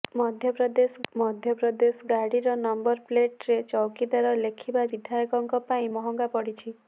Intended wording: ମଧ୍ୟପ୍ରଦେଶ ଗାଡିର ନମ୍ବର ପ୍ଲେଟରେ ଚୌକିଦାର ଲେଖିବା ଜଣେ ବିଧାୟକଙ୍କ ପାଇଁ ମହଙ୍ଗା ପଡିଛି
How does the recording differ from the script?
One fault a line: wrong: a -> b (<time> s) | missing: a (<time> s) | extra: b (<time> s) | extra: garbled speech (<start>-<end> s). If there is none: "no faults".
extra: ମଧ୍ୟପ୍ରଦେଶ (1.1 s)
missing: ଜଣେ (4.9 s)